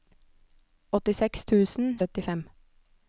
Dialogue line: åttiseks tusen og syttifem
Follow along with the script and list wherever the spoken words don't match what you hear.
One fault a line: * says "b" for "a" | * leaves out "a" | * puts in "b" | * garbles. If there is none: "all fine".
all fine